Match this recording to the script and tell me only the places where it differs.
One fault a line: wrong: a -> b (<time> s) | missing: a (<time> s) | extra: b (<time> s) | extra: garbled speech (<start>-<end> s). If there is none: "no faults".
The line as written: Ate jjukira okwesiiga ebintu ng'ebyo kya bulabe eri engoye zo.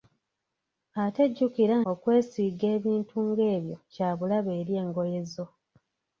no faults